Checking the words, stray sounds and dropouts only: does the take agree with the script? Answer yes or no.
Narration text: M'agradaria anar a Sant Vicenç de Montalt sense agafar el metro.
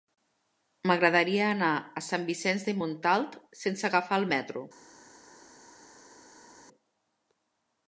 yes